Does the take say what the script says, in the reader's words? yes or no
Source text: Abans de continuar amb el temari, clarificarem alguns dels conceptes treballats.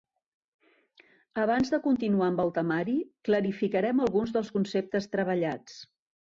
yes